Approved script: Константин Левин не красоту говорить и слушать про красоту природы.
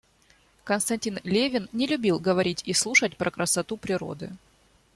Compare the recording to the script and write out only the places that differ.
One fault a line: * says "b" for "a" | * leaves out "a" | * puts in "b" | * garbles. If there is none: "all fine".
* says "любил" for "красоту"